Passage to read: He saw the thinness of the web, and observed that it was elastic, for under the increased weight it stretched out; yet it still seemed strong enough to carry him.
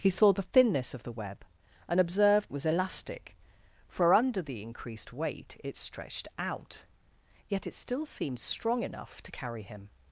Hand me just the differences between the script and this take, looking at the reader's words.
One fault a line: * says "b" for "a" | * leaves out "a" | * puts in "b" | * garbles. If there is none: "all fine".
* leaves out "that"